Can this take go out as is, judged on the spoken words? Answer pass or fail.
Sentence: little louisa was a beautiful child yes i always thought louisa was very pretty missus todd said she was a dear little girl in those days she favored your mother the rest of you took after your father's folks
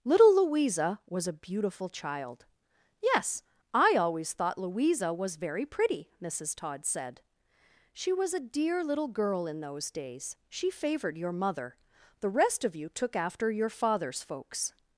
pass